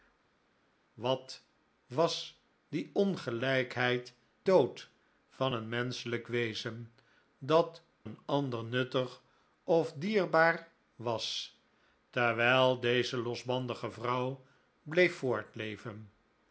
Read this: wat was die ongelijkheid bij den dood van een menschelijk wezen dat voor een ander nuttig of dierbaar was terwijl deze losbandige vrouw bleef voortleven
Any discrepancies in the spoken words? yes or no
yes